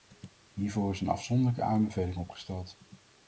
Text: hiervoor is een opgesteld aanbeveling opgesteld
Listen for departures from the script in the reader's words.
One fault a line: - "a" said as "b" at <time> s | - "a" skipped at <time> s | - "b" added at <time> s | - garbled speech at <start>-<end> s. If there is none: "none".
- "opgesteld" said as "afzonderlijke" at 1.1 s